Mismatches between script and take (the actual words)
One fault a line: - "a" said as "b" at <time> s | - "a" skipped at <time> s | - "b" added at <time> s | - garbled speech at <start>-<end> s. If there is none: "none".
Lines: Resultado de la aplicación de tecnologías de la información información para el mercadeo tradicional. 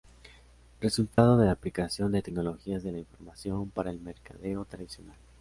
- "información" skipped at 3.7 s